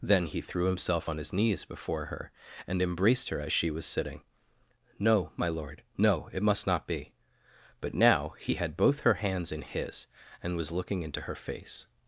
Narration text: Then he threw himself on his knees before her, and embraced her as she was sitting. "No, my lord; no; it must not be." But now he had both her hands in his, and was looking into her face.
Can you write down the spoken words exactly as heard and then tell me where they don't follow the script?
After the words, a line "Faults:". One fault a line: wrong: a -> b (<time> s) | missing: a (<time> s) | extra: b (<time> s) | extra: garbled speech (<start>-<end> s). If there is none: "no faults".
Then he threw himself on his knees before her, and embraced her as she was sitting. "No, my lord; no; it must not be." But now he had both her hands in his, and was looking into her face.
Faults:
no faults